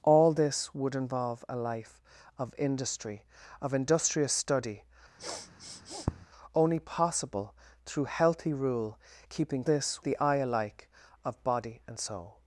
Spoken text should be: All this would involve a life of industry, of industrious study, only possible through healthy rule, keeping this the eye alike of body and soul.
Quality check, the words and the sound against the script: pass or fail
fail